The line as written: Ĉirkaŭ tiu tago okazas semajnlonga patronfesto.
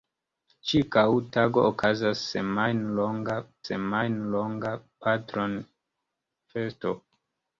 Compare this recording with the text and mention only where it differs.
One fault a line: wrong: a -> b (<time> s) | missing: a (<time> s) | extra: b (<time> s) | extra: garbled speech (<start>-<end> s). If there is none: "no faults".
missing: tiu (1.0 s)
extra: semajnlonga (3.6 s)